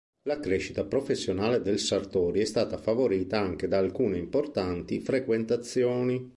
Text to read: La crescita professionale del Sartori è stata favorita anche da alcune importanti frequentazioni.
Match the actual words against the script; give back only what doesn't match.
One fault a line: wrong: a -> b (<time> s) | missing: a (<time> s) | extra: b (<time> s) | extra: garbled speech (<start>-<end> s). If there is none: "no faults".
no faults